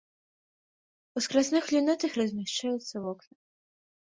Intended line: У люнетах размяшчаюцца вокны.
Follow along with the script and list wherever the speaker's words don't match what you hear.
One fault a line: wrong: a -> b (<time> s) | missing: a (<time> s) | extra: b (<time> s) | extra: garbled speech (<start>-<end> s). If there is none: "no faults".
extra: скразных (1.2 s)